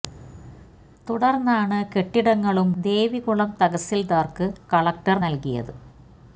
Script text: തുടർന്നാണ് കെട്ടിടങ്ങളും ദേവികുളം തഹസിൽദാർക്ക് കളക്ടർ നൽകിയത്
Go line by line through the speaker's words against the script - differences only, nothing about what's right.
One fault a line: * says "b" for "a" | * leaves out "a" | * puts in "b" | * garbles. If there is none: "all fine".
all fine